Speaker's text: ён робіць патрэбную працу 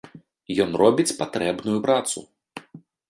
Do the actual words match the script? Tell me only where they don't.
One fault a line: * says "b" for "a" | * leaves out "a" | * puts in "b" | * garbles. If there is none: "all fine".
all fine